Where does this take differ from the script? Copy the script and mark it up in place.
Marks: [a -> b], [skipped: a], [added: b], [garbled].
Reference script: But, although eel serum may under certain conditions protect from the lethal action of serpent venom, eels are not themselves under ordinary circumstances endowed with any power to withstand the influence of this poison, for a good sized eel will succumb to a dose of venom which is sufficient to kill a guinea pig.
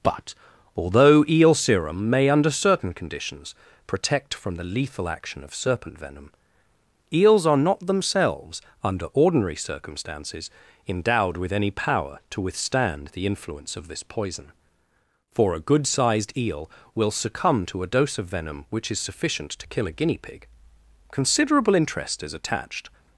But, although eel serum may under certain conditions protect from the lethal action of serpent venom, eels are not themselves under ordinary circumstances endowed with any power to withstand the influence of this poison, for a good sized eel will succumb to a dose of venom which is sufficient to kill a guinea pig. [added: Considerable interest is attached]